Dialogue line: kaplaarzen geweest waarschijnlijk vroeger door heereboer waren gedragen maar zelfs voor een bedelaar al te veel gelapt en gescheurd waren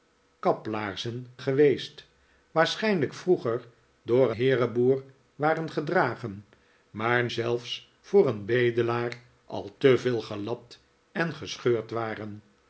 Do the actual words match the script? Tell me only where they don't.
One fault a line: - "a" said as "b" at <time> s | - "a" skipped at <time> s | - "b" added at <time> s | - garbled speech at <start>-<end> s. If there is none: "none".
none